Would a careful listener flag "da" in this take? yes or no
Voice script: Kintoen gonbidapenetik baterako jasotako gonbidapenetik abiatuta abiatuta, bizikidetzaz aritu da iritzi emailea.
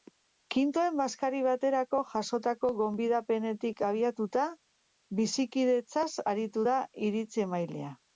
no